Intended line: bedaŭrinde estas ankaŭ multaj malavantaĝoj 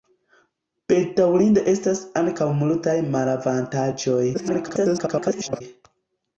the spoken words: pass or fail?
fail